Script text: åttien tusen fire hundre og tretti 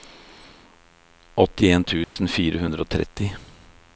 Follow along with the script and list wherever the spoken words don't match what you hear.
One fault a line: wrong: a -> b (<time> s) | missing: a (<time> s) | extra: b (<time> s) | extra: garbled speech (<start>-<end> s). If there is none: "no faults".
no faults